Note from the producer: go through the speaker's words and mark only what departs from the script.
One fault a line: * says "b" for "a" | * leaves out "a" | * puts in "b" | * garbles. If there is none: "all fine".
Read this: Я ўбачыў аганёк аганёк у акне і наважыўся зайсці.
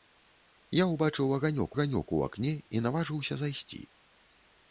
all fine